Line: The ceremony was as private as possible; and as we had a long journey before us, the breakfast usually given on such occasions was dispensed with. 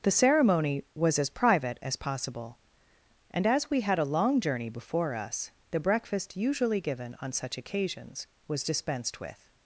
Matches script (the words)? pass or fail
pass